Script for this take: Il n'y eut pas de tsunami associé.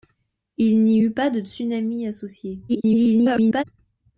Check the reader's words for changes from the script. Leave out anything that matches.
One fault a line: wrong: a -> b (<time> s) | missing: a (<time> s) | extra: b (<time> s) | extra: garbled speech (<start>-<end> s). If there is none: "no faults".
extra: garbled speech (2.7-3.6 s)